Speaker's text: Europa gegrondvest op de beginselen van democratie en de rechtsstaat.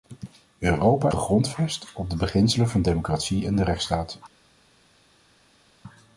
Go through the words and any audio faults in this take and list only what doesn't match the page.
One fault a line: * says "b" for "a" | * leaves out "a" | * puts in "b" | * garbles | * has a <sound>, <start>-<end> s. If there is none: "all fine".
all fine